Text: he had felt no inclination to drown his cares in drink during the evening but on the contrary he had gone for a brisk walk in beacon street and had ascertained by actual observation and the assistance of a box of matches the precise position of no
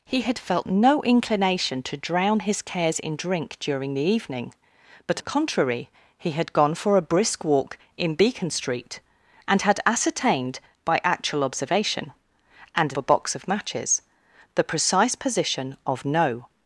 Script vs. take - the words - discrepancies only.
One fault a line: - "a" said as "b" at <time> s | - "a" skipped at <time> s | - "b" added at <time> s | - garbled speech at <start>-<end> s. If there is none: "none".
- "on" skipped at 5.2 s
- "the assistance of" skipped at 12.9 s